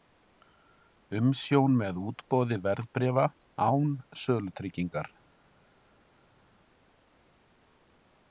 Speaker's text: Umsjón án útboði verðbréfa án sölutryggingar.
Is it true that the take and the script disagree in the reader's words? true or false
true